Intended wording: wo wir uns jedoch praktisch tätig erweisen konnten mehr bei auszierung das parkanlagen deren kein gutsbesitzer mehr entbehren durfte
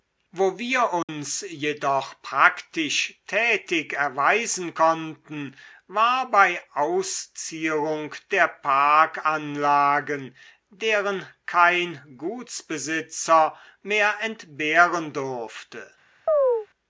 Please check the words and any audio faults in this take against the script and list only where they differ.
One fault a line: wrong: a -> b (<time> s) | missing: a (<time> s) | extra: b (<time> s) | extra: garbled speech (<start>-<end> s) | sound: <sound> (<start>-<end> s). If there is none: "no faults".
sound: dropout (1.0-1.1 s)
wrong: mehr -> war (5.9 s)
wrong: das -> der (8.3 s)
sound: chirp (16.3-16.7 s)